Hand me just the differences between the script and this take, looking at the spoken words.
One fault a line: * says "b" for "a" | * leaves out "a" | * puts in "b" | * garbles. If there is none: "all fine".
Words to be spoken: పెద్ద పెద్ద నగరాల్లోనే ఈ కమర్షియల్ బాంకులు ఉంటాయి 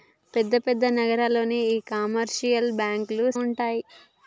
all fine